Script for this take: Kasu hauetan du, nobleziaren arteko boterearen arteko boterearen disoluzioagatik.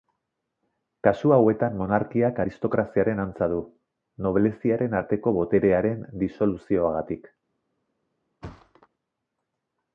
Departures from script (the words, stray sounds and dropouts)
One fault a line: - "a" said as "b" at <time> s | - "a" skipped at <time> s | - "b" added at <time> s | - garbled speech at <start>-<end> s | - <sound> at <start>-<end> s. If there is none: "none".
- "monarkiak aristokraziaren antza" added at 1.8 s
- "arteko boterearen" skipped at 6.1 s
- thud at 8.4-8.9 s